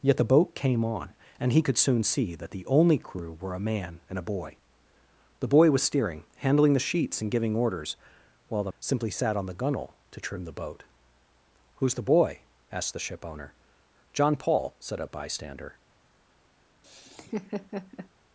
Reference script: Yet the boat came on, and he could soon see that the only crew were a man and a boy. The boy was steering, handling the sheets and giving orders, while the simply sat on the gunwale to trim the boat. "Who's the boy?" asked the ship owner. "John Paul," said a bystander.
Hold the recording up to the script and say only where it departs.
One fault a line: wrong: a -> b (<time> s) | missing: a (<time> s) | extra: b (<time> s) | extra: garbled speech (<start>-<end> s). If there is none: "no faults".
no faults